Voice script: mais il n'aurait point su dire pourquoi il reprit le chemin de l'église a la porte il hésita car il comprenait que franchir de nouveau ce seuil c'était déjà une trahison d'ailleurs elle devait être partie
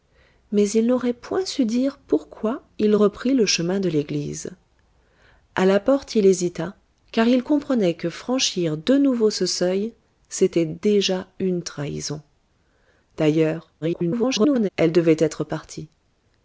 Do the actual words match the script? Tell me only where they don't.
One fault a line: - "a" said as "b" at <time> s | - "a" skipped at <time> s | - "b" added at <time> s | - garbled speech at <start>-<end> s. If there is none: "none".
- garbled speech at 13.8-14.7 s